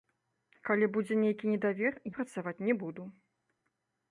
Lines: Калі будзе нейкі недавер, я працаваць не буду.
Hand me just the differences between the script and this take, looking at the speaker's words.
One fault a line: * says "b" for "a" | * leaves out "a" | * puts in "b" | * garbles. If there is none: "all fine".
* leaves out "я"